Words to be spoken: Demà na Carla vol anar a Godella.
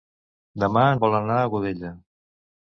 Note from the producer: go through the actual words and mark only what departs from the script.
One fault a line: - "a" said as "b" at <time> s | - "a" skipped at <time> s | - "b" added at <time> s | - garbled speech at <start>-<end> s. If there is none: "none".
- "na Carla" skipped at 0.8 s